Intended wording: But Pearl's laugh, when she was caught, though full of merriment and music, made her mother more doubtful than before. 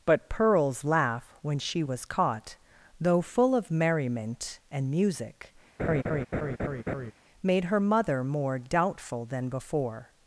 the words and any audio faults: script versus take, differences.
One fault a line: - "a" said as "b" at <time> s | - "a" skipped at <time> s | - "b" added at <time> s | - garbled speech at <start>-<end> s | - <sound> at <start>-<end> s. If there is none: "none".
- laugh at 5.8-7.1 s